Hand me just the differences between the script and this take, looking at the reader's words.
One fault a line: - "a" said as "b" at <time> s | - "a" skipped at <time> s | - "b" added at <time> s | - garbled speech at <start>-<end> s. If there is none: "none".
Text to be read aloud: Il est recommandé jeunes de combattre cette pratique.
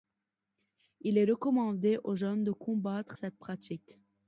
- "aux" added at 2.0 s